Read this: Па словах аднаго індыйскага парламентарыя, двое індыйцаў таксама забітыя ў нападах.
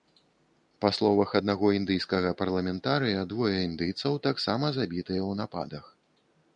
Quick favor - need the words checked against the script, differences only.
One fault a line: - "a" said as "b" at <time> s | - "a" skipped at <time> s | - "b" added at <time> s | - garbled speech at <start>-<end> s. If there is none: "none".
none